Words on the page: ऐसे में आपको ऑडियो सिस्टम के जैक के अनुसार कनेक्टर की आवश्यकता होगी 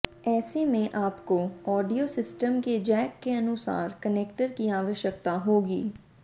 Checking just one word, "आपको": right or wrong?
right